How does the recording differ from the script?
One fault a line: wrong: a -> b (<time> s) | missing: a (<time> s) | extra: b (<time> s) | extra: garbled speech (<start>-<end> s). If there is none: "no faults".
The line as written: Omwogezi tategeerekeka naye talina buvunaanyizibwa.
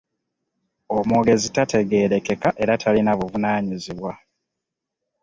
wrong: naye -> era (2.6 s)